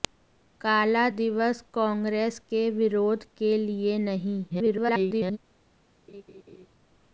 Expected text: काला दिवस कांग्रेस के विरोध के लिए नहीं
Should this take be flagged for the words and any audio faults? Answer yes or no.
yes